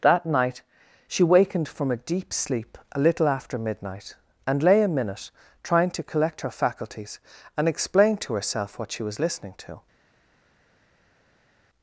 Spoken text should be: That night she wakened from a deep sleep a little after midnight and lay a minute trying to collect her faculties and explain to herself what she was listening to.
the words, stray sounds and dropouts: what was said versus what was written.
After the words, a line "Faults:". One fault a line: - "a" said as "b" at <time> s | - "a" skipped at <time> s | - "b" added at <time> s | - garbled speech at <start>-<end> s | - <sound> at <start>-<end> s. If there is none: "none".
That night she wakened from a deep sleep a little after midnight and lay a minute trying to collect her faculties and explain to herself what she was listening to.
Faults:
none